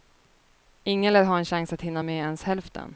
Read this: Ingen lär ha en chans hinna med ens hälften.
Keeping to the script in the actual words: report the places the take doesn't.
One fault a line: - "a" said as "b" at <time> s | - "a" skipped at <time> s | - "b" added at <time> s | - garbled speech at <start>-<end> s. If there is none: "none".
- "att" added at 1.7 s